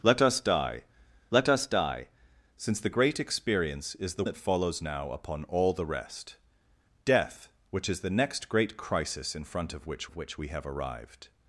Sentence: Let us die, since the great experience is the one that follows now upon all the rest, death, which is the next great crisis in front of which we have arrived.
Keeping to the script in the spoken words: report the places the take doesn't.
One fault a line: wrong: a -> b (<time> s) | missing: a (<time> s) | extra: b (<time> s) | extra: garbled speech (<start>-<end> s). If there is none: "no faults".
extra: let us die (1.3 s)
missing: one (4.2 s)
extra: of which (10.1 s)